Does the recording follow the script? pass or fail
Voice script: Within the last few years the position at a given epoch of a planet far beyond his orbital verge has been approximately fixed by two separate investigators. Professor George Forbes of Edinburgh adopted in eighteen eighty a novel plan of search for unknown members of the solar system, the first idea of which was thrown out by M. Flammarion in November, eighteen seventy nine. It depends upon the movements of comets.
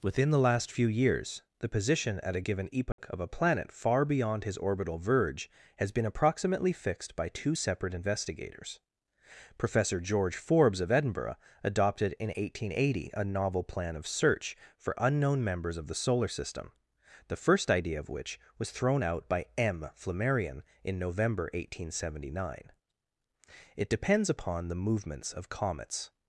pass